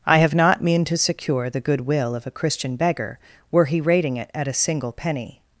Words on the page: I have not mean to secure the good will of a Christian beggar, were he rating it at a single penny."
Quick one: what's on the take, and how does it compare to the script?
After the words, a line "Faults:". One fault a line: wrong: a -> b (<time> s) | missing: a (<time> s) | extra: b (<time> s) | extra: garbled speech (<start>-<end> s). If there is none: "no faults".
I have not mean to secure the good will of a Christian beggar, were he rating it at a single penny."
Faults:
no faults